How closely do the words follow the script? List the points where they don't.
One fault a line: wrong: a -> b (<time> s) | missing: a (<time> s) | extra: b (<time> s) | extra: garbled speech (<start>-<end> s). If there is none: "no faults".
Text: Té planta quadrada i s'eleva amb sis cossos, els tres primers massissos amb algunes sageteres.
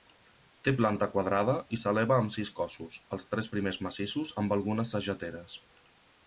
no faults